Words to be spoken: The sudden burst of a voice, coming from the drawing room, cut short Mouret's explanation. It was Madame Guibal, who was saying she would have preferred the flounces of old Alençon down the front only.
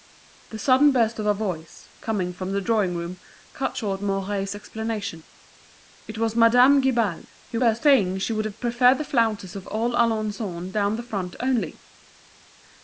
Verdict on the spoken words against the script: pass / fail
fail